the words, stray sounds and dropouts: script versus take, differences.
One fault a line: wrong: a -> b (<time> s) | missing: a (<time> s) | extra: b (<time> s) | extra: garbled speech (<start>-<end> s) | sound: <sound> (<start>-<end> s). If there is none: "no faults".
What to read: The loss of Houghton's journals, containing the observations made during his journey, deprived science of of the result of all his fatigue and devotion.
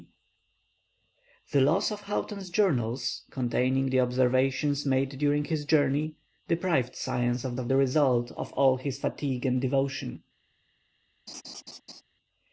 sound: laugh (11.3-12.0 s)